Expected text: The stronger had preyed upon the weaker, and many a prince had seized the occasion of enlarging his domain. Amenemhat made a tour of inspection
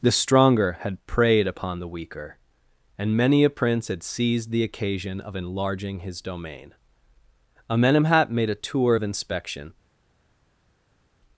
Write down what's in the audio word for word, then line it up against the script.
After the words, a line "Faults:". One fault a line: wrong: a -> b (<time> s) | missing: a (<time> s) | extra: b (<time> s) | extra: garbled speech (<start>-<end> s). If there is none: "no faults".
The stronger had preyed upon the weaker, and many a prince had seized the occasion of enlarging his domain. Amenemhat made a tour of inspection
Faults:
no faults